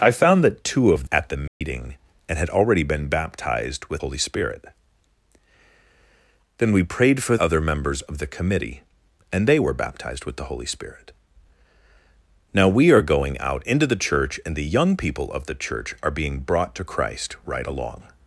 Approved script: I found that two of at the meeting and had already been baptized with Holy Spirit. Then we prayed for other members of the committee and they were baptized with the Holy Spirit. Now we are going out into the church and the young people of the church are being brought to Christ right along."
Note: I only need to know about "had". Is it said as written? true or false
true